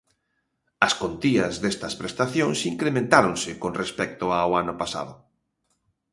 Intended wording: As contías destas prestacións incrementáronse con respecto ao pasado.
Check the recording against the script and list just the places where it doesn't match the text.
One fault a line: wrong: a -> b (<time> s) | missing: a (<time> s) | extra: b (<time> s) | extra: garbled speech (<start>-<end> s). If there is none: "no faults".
extra: ano (4.6 s)